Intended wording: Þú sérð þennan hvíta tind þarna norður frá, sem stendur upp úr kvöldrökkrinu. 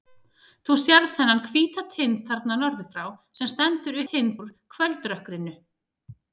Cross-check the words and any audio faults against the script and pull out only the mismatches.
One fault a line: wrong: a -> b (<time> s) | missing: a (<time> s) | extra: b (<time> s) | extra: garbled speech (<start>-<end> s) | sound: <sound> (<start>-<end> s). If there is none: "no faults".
wrong: upp -> tind (4.1 s)